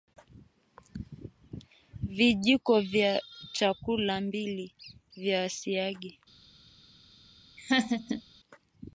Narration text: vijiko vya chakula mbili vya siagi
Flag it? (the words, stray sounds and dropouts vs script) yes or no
yes